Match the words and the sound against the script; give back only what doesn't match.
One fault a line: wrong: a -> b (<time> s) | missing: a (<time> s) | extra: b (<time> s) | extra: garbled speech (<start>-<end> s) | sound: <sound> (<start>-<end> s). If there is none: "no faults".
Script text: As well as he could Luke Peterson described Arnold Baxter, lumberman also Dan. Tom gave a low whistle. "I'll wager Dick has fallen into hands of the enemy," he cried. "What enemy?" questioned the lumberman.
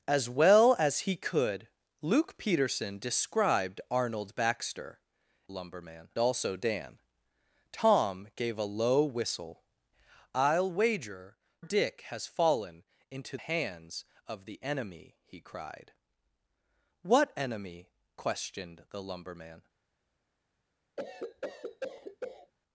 sound: cough (21.0-22.5 s)